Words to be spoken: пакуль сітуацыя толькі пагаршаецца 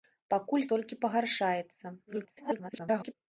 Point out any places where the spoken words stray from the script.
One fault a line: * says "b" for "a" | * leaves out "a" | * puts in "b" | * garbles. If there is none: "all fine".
* leaves out "сітуацыя"
* garbles